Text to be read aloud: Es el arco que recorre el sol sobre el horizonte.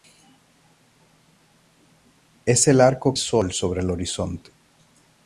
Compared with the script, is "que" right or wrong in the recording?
wrong